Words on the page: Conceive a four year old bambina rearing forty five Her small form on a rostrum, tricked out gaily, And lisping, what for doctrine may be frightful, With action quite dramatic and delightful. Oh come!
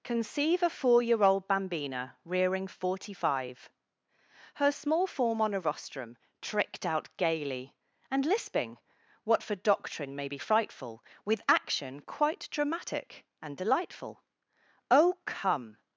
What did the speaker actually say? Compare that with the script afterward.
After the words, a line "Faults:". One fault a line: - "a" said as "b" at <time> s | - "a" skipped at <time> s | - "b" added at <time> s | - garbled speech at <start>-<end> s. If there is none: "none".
Conceive a four year old bambina rearing forty five Her small form on a rostrum, tricked out gaily, And lisping, what for doctrine may be frightful, With action quite dramatic and delightful. Oh come!
Faults:
none